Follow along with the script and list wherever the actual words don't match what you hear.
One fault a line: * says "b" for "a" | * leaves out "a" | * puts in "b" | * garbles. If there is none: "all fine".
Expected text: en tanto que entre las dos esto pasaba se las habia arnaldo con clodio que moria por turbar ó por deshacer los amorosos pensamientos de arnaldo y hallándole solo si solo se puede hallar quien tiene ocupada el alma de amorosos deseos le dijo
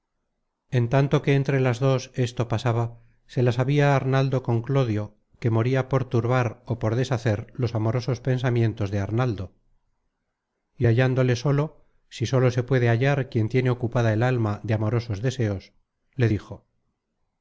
all fine